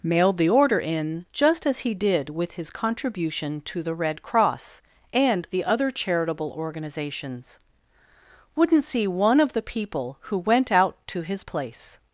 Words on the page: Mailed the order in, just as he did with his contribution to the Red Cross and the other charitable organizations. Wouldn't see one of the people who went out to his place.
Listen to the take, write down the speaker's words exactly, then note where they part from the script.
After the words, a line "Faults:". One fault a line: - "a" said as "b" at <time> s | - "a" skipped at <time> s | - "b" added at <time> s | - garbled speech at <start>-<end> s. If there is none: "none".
Mailed the order in, just as he did with his contribution to the Red Cross and the other charitable organizations. Wouldn't see one of the people who went out to his place.
Faults:
none